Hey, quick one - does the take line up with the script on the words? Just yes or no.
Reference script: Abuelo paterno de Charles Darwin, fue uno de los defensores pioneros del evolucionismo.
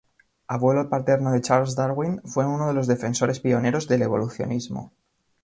yes